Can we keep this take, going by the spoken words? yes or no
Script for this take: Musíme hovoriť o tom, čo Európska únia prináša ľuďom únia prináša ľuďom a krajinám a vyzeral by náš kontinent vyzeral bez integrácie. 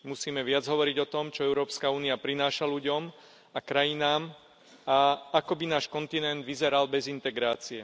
no